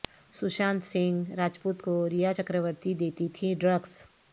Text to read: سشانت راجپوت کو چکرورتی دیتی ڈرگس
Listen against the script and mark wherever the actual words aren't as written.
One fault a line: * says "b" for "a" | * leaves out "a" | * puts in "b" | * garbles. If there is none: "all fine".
* puts in "سنگھ"
* puts in "ریا"
* puts in "تھیں"